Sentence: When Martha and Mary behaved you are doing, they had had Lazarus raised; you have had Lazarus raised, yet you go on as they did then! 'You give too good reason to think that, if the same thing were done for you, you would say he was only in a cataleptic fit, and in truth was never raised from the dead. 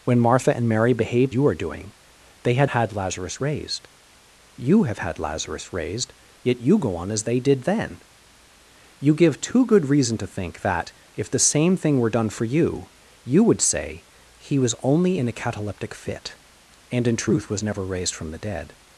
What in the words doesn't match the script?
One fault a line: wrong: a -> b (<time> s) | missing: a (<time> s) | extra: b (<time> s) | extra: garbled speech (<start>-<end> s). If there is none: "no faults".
no faults